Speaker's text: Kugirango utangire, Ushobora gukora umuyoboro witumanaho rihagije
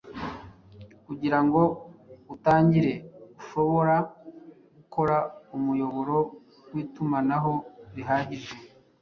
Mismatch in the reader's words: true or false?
false